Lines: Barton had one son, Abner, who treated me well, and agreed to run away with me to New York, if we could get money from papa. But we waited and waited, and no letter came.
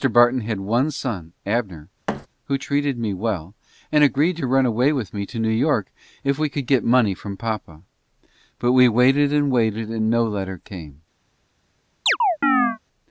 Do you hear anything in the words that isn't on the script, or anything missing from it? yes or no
no